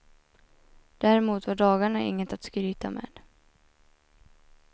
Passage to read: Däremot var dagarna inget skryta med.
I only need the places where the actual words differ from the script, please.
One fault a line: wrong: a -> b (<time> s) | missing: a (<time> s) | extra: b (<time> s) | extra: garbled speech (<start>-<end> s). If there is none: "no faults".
extra: att (2.3 s)